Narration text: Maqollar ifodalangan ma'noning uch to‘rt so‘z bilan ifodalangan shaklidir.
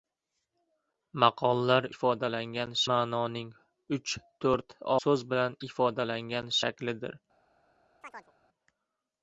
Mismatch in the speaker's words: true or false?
false